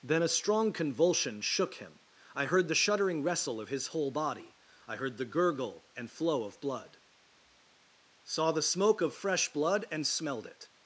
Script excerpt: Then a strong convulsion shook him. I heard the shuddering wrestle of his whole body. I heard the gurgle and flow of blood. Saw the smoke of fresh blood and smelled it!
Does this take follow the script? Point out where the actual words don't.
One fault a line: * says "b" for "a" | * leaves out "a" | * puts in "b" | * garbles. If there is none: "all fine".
all fine